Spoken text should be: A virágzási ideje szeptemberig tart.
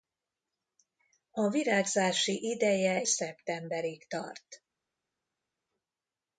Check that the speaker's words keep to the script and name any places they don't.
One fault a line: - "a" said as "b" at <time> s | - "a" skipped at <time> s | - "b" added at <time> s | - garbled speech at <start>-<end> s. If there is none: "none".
none